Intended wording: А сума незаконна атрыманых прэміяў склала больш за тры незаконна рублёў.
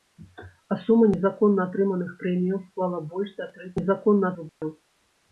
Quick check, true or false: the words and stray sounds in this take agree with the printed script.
false